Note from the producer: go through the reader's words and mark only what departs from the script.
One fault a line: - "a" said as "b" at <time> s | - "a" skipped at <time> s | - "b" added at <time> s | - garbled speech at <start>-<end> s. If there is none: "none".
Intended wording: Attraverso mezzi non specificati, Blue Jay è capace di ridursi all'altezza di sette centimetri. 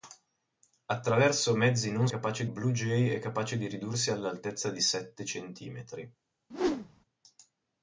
- "specificati" said as "capace" at 2.1 s